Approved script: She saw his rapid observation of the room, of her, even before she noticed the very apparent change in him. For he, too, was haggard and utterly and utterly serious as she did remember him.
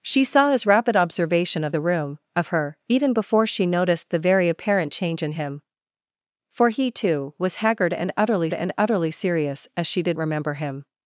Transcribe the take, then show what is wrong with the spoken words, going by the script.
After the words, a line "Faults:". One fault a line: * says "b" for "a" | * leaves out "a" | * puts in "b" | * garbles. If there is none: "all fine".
She saw his rapid observation of the room, of her, even before she noticed the very apparent change in him. For he, too, was haggard and utterly and utterly serious as she did remember him.
Faults:
all fine